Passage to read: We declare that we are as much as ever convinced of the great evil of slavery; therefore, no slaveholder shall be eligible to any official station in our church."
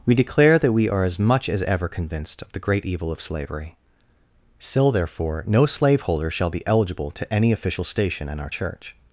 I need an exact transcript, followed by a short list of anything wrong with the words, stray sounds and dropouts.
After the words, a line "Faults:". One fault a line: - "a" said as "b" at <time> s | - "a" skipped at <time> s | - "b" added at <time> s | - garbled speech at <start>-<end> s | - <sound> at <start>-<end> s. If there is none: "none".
We declare that we are as much as ever convinced of the great evil of slavery; still therefore, no slaveholder shall be eligible to any official station in our church."
Faults:
- "still" added at 4.6 s